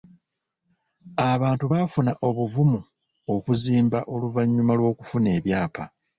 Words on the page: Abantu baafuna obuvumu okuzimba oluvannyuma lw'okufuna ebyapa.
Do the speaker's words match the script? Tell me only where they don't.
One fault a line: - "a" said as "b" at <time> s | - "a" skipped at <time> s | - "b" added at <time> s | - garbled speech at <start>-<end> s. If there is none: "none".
none